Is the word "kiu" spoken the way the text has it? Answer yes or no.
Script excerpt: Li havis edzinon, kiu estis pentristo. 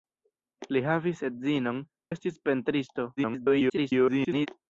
no